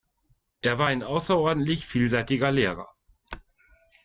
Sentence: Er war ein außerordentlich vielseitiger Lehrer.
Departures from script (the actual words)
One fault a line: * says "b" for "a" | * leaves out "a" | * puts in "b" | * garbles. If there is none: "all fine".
all fine